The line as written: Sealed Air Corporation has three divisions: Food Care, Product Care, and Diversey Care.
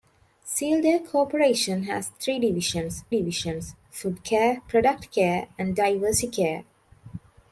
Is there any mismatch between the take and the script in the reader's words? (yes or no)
yes